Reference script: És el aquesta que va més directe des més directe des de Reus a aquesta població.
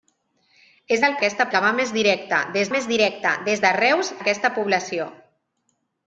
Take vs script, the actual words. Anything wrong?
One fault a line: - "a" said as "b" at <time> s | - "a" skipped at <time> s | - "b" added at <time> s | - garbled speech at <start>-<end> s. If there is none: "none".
none